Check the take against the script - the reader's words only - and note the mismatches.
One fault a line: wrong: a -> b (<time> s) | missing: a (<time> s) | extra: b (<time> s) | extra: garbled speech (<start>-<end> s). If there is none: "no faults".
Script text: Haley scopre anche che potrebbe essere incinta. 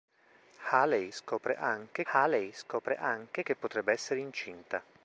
extra: haley scopre anche (2.1 s)